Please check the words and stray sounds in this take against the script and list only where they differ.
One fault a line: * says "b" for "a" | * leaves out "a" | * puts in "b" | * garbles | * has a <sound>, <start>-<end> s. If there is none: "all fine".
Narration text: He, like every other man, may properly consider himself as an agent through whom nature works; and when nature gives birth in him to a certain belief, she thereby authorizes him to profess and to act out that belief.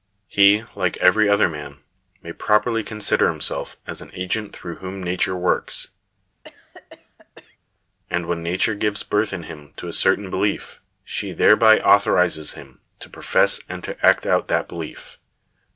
* has a cough, 6.4-7.6 s